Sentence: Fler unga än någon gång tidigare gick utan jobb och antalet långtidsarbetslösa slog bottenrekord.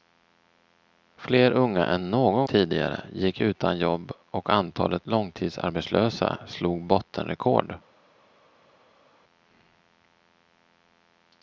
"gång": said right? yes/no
no